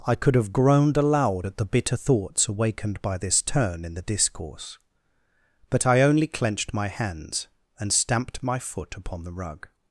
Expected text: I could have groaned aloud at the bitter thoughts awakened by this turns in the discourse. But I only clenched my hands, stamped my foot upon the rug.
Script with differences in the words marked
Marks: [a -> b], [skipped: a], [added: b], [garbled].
I could have groaned aloud at the bitter thoughts awakened by this [turns -> turn] in the discourse. But I only clenched my hands, [added: and] stamped my foot upon the rug.